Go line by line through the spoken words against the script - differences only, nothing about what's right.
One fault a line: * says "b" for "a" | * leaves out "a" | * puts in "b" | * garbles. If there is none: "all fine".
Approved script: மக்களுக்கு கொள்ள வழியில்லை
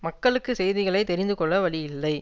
* puts in "செய்திகளை தெரிந்து"